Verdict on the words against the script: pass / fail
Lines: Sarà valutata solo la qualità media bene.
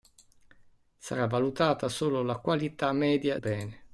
pass